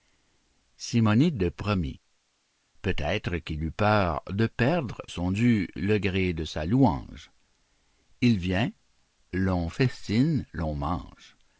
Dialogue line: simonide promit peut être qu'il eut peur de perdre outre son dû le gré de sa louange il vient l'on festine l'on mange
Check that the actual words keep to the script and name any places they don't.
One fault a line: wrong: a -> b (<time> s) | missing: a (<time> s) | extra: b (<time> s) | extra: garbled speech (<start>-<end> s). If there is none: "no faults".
missing: outre (5.0 s)